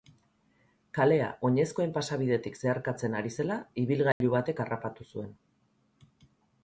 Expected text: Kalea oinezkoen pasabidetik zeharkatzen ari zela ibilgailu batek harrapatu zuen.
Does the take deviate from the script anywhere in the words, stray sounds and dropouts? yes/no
yes